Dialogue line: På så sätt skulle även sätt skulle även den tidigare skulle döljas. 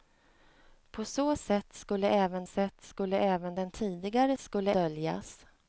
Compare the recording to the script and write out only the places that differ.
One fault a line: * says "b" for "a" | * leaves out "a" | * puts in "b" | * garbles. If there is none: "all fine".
all fine